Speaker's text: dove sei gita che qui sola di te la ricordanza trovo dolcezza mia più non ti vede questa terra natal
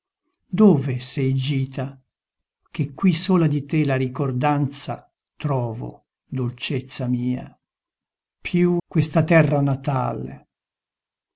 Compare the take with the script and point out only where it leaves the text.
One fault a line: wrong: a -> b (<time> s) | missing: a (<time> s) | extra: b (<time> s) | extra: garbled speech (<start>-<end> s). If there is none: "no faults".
missing: non ti vede (8.8 s)